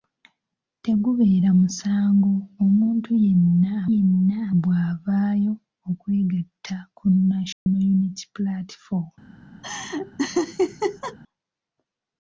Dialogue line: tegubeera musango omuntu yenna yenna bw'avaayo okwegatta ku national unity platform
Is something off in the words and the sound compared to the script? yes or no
yes